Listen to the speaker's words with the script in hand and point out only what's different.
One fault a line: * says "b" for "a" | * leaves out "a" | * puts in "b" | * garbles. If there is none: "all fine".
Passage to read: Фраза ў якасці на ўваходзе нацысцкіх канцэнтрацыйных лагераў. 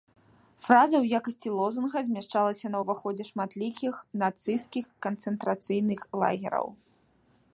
* puts in "лозунга змяшчалася"
* puts in "шматлікіх"